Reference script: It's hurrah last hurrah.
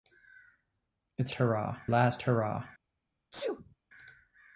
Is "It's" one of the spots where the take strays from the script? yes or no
no